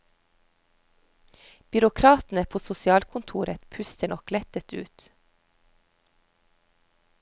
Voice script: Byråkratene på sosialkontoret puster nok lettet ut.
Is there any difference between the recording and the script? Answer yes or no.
no